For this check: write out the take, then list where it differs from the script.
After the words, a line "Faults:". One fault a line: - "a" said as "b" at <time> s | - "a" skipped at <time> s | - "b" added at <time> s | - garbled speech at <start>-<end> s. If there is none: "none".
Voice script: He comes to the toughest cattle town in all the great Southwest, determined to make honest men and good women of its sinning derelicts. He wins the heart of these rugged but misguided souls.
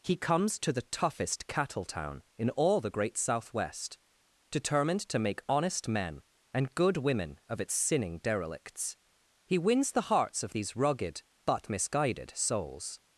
He comes to the toughest cattle town in all the great Southwest, determined to make honest men and good women of its sinning derelicts. He wins the hearts of these rugged but misguided souls.
Faults:
- "heart" said as "hearts" at 10.1 s